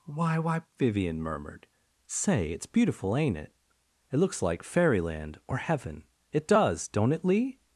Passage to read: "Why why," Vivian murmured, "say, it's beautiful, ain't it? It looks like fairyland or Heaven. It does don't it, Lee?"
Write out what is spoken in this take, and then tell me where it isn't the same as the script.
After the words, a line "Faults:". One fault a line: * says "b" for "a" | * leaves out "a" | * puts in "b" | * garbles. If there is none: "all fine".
"Why why," Vivian murmured, "say, it's beautiful, ain't it? It looks like fairyland or Heaven. It does don't it, Lee?"
Faults:
all fine